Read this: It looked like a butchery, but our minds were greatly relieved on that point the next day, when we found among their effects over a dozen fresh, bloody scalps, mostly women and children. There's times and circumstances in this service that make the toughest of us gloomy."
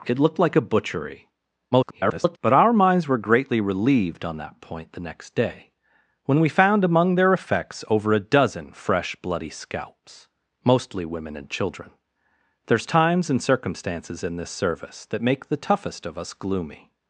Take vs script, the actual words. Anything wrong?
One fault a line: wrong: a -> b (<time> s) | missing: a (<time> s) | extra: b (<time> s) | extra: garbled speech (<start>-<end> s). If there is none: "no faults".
extra: garbled speech (1.7-2.4 s)